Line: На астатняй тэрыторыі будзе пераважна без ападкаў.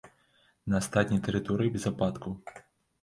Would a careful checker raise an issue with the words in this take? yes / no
yes